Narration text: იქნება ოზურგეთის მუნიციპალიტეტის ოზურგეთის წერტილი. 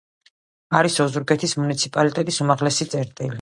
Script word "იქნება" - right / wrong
wrong